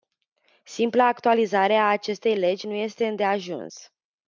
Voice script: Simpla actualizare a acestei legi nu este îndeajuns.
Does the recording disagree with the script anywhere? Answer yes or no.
no